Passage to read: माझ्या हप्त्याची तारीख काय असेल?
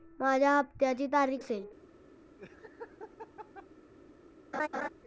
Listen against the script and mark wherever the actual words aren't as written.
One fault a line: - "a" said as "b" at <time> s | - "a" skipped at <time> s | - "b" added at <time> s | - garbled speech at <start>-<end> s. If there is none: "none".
- "काय" skipped at 1.4 s